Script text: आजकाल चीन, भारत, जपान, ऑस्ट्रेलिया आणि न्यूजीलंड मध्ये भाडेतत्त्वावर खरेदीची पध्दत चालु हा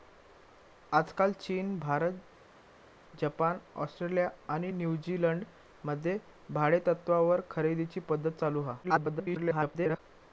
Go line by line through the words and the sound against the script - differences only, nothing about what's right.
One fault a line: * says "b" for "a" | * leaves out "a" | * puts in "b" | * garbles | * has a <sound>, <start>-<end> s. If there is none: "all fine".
* garbles